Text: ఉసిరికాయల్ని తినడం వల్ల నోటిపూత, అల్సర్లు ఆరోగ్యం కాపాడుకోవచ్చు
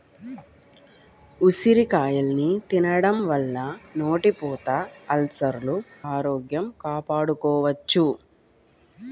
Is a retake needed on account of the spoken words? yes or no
no